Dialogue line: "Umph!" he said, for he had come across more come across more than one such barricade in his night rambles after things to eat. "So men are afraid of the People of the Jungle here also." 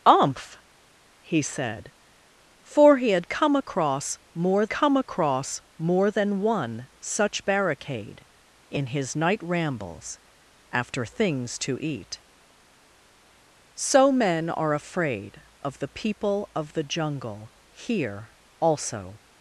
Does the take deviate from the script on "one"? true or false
false